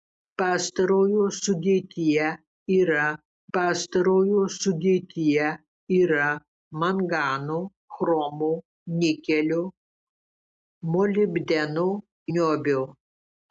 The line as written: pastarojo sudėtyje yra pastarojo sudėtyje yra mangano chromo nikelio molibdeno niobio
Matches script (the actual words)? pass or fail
pass